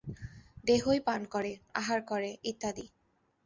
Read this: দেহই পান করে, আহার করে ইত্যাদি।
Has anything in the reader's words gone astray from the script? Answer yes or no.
no